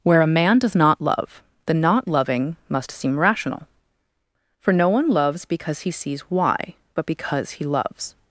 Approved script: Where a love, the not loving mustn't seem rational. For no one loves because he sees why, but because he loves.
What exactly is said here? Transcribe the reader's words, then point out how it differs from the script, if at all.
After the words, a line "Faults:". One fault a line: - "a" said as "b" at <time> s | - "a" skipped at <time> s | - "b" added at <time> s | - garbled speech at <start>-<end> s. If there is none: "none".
Where a man does not love, the not loving must seem rational. For no one loves because he sees why, but because he loves.
Faults:
- "man does not" added at 0.3 s
- "mustn't" said as "must" at 2.7 s